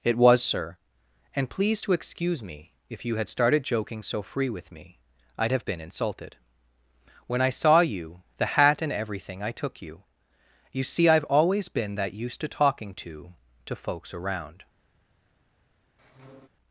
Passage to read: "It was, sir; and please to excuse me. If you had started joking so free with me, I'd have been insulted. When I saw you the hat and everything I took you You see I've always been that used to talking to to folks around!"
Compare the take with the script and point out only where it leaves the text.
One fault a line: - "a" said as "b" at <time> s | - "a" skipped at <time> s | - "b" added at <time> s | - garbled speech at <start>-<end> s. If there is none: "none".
none